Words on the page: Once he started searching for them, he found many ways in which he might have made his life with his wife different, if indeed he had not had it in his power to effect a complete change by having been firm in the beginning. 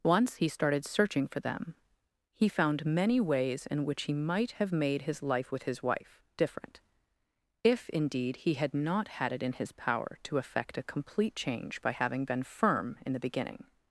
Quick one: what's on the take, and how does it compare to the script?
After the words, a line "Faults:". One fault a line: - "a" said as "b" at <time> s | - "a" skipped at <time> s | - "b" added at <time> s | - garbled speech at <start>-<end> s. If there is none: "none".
Once he started searching for them, he found many ways in which he might have made his life with his wife different, if indeed he had not had it in his power to effect a complete change by having been firm in the beginning.
Faults:
none